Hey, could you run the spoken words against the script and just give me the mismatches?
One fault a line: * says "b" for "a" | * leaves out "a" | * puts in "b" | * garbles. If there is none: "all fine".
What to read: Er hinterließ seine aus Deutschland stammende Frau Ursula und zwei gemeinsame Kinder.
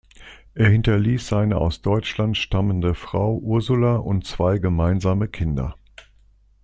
all fine